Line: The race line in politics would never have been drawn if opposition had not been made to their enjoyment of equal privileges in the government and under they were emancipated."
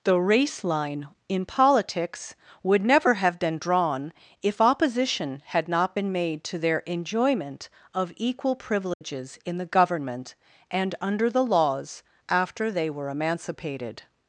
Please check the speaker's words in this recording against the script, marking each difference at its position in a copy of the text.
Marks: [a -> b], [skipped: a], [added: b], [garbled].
The race line in politics would never have been drawn if opposition had not been made to their enjoyment of equal privileges in the government and under [added: the laws after] they were emancipated."